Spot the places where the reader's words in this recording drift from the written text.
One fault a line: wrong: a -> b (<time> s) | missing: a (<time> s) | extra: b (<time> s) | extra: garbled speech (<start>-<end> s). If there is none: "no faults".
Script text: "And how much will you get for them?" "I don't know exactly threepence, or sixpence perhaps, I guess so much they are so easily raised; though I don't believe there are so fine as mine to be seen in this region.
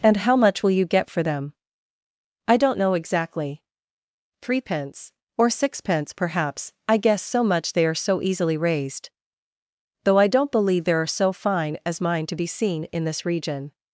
no faults